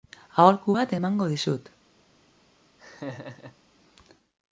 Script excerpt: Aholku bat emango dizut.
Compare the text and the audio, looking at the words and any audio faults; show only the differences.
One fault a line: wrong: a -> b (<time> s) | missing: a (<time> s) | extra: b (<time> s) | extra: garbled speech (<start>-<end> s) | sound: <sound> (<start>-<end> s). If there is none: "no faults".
sound: laugh (2.8-3.6 s)